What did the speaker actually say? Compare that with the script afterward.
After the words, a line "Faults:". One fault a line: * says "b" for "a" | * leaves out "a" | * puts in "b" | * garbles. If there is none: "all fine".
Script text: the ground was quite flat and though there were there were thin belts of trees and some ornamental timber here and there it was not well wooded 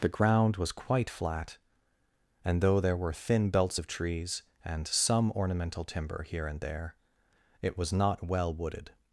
the ground was quite flat and though there were thin belts of trees and some ornamental timber here and there it was not well wooded
Faults:
* leaves out "there were"